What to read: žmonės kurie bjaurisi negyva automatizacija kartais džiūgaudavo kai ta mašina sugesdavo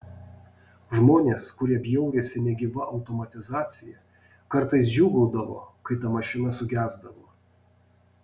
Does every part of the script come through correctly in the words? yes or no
yes